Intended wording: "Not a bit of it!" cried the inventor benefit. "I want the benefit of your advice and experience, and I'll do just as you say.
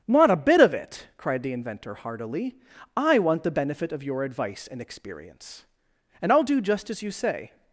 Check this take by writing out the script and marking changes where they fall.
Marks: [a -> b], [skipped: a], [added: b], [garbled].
"Not a bit of it!" cried the inventor [benefit. -> heartily] "I want the benefit of your advice and experience, and I'll do just as you say.